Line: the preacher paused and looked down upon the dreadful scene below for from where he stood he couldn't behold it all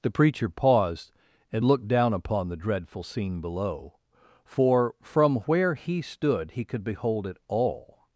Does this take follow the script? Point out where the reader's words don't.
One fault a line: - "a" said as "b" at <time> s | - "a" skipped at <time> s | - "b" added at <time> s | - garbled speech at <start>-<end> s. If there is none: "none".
- "couldn't" said as "could" at 6.6 s